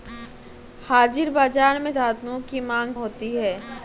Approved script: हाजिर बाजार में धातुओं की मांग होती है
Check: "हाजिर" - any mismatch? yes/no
no